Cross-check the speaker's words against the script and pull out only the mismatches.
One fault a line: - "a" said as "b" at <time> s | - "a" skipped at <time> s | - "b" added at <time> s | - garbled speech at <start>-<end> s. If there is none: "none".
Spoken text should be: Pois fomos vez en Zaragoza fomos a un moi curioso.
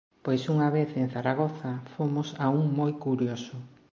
- "fomos" said as "unha" at 0.5 s